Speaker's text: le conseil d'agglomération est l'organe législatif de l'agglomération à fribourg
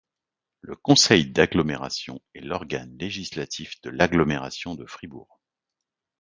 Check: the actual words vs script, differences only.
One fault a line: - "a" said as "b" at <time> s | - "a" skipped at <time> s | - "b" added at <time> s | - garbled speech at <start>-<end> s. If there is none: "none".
- "à" said as "de" at 4.7 s